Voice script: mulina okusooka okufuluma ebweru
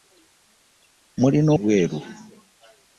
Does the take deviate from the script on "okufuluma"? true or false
true